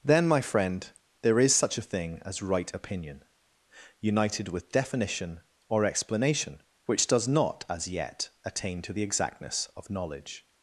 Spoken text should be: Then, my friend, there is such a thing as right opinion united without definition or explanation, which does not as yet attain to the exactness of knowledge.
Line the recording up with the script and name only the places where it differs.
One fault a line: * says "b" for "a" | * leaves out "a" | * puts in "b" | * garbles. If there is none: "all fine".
* says "with" for "without"